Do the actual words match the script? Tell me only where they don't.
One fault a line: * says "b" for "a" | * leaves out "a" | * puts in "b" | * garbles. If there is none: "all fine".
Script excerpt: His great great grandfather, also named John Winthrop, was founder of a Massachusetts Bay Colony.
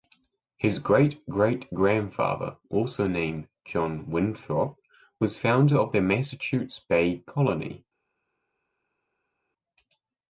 * says "the" for "a"